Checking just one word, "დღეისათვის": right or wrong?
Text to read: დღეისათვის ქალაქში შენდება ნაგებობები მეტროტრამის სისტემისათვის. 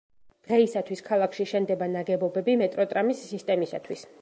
right